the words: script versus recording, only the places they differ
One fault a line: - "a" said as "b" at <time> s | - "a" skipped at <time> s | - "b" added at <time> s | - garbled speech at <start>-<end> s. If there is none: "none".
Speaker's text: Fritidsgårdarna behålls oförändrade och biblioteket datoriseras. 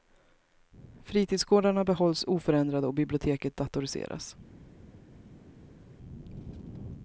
none